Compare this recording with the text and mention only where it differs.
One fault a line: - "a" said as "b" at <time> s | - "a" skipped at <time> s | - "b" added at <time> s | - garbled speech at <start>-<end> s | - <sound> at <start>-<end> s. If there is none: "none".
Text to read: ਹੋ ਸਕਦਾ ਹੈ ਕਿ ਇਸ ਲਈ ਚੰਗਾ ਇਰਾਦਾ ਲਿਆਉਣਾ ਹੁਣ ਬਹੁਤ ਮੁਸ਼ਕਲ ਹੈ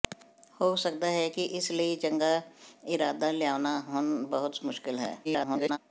- garbled speech at 5.2-5.8 s